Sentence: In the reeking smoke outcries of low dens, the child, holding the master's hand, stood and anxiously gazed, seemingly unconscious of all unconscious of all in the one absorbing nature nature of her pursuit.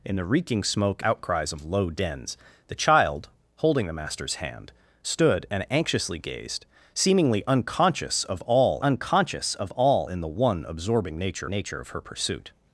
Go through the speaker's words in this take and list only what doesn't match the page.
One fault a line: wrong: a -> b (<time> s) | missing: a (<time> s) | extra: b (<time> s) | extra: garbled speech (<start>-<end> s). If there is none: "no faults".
no faults